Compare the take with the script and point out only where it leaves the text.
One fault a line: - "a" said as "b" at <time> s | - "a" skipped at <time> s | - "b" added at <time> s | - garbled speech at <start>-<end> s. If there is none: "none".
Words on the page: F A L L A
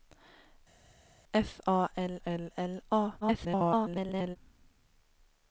- "L" added at 2.6 s
- garbled speech at 3.2-4.4 s